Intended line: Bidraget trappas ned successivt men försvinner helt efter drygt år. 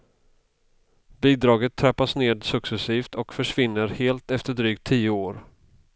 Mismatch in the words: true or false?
true